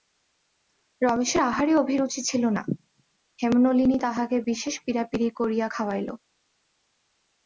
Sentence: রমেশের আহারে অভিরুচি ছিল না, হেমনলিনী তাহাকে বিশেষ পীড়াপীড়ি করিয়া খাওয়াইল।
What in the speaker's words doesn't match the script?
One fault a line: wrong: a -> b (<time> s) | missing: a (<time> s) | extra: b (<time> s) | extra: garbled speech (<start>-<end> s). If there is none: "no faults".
no faults